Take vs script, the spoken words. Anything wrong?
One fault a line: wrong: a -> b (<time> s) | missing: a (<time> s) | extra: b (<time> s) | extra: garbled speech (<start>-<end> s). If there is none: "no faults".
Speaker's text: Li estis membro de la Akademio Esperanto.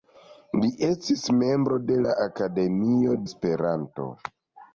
no faults